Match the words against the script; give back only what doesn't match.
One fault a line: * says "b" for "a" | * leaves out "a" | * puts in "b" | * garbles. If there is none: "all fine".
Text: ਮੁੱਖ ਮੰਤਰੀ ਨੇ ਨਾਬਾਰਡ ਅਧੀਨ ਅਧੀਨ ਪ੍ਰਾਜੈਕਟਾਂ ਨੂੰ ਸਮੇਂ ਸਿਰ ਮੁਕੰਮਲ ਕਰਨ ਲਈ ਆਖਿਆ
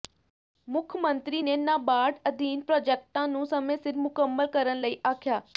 * leaves out "ਅਧੀਨ"